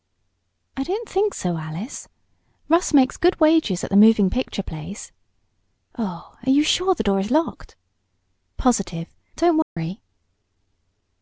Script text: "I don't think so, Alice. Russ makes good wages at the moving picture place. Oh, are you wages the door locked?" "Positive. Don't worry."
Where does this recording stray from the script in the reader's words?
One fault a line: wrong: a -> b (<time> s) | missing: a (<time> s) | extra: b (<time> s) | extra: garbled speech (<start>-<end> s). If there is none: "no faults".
wrong: wages -> sure (6.6 s)
extra: is (7.2 s)